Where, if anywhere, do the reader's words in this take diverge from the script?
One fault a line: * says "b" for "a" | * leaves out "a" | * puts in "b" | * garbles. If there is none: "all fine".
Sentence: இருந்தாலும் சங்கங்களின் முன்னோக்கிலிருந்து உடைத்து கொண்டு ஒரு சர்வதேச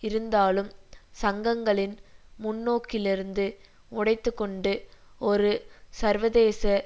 all fine